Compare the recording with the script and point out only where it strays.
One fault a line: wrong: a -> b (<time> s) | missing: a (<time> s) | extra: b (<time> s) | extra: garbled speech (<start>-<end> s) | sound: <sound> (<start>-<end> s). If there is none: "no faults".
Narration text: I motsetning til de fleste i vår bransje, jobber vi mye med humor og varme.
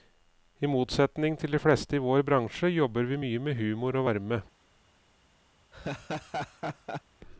sound: laugh (5.7-7.0 s)